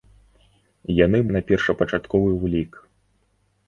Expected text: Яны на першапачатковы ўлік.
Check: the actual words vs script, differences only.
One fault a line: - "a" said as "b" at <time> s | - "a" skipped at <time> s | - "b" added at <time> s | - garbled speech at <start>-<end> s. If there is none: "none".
none